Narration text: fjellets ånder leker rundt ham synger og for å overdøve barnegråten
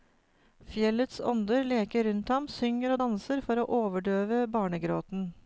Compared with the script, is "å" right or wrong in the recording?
right